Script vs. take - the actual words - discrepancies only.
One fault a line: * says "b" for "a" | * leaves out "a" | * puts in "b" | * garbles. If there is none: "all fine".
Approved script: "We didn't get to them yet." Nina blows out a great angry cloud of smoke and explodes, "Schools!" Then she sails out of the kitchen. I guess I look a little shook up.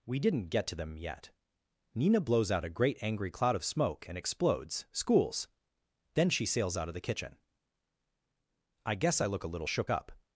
all fine